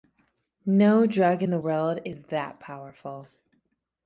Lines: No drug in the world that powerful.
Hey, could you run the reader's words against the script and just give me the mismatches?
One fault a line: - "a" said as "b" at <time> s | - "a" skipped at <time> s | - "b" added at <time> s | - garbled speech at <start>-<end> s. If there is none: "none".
- "is" added at 2.0 s